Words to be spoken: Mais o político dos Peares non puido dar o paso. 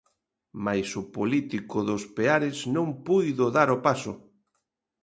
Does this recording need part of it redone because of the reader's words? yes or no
no